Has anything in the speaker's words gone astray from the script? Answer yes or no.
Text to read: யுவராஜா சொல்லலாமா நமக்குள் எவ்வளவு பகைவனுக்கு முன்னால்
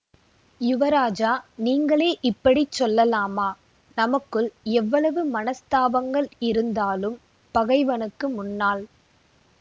yes